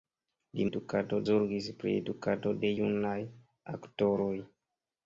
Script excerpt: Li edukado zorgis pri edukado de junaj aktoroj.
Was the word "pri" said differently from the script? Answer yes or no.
no